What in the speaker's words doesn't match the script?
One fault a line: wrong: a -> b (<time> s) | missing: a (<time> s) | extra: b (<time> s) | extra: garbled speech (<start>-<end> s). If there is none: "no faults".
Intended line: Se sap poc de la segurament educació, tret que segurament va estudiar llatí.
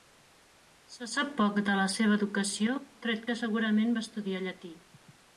wrong: segurament -> seva (2.0 s)